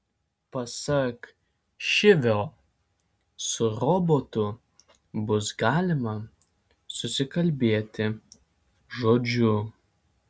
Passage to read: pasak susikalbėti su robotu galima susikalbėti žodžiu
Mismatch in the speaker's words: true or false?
true